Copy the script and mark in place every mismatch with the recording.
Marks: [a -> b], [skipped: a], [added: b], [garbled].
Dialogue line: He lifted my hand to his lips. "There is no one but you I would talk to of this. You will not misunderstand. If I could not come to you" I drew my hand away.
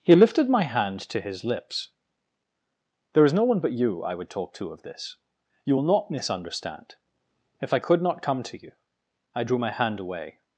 He lifted my hand to his lips. "There is no one but you I would talk to of this. You will not misunderstand. If I could not come to you" I drew my hand away.